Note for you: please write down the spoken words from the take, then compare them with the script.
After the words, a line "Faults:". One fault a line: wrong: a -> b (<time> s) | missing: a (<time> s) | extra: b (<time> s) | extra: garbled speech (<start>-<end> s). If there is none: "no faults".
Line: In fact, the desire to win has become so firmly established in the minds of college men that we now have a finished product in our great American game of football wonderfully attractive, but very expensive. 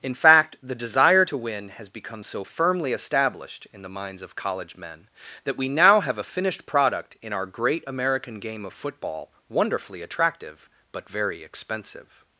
In fact, the desire to win has become so firmly established in the minds of college men that we now have a finished product in our great American game of football wonderfully attractive, but very expensive.
Faults:
no faults